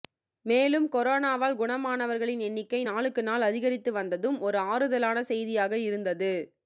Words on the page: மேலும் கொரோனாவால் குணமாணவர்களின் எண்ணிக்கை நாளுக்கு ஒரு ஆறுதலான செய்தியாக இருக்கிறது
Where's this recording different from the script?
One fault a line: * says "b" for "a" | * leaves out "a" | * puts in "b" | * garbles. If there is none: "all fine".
* puts in "நாள் அதிகரித்து வந்ததும்"
* says "இருந்தது" for "இருக்கிறது"